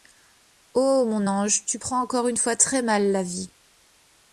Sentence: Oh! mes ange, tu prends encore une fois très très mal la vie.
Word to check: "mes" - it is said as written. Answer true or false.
false